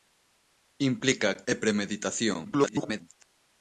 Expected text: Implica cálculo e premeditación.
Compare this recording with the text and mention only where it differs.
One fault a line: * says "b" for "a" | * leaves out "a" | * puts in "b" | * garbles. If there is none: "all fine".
* leaves out "cálculo"
* garbles